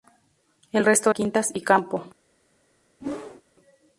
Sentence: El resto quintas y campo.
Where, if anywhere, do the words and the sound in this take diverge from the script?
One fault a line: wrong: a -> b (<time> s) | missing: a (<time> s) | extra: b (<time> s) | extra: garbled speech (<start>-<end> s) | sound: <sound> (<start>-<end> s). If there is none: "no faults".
sound: whoosh (3.0-3.4 s)